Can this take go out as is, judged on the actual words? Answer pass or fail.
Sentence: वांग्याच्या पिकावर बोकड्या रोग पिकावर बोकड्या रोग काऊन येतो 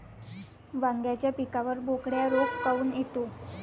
fail